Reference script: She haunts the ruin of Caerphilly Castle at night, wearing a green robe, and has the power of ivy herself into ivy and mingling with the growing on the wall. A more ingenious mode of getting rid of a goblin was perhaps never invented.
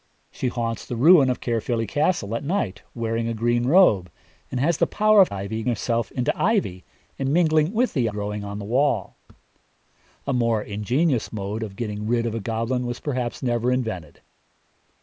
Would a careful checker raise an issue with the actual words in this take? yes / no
no